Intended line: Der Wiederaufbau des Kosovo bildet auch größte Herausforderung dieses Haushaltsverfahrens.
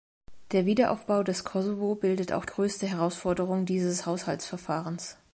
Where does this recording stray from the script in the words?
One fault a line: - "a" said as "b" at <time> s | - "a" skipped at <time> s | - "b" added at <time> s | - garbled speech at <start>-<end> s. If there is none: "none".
none